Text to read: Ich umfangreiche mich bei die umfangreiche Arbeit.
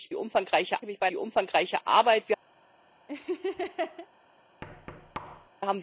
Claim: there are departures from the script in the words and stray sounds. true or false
true